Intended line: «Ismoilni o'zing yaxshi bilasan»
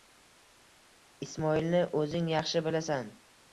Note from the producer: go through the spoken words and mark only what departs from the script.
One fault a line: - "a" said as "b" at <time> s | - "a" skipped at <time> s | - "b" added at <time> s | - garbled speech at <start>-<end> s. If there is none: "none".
none